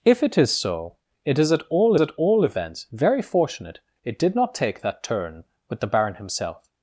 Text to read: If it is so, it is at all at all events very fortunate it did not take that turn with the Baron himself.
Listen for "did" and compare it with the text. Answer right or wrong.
right